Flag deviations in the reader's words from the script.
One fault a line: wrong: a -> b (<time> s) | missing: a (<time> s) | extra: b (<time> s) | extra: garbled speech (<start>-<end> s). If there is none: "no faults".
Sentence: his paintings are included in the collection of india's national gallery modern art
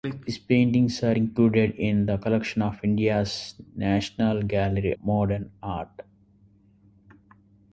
no faults